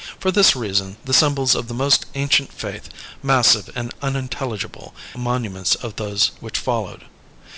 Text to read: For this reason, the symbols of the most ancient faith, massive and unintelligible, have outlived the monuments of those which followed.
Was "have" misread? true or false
true